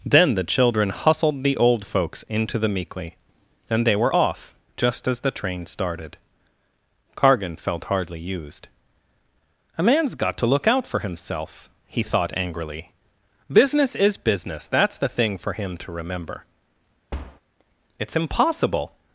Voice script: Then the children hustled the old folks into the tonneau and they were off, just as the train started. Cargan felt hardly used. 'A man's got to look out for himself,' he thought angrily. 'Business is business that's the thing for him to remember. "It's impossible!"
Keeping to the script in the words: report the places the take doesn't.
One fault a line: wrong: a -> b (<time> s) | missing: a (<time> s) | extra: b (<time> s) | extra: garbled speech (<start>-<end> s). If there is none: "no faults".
wrong: tonneau -> meekly (2.7 s)